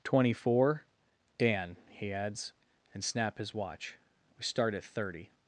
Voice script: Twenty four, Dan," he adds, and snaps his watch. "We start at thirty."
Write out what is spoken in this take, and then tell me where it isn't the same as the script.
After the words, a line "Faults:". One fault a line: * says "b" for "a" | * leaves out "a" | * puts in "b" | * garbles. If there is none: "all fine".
Twenty four, Dan," he adds, and snap his watch. "We start at thirty."
Faults:
* says "snap" for "snaps"